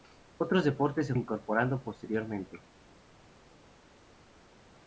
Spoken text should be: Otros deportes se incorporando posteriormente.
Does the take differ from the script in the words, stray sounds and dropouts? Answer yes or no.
no